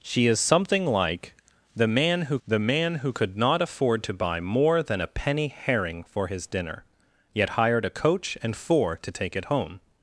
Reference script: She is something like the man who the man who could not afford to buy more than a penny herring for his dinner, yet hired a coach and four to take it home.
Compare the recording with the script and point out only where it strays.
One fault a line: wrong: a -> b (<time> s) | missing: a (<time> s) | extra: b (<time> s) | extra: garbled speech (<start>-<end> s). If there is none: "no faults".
no faults